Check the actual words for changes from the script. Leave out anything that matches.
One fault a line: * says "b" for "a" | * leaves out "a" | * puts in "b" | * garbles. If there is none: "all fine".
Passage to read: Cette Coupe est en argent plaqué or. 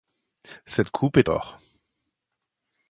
* leaves out "en argent plaqué"